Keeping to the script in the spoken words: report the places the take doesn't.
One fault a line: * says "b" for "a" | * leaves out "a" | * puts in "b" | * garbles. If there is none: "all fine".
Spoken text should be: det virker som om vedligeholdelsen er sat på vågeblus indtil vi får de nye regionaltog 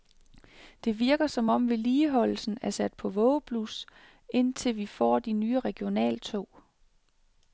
all fine